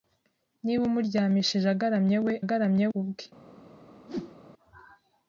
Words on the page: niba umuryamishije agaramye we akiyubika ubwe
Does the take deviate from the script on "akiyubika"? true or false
true